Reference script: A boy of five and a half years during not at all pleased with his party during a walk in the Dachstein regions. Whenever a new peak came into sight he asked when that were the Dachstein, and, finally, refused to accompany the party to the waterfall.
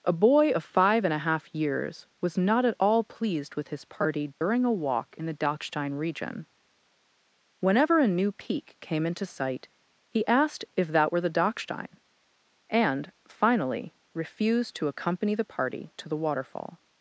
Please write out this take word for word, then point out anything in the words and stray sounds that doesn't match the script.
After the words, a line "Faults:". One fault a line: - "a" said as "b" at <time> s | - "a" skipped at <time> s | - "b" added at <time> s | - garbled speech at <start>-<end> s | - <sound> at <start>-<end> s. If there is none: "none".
A boy of five and a half years was not at all pleased with his party during a walk in the Dachstein region. Whenever a new peak came into sight he asked if that were the Dachstein, and, finally, refused to accompany the party to the waterfall.
Faults:
- "during" said as "was" at 2.2 s
- dropout at 4.3-4.4 s
- "regions" said as "region" at 5.9 s
- "when" said as "if" at 10.7 s